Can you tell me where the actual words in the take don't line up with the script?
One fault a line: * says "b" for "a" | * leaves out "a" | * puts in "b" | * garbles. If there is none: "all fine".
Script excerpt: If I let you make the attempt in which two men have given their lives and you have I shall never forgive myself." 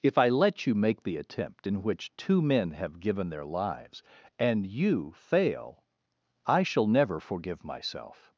* says "fail" for "have"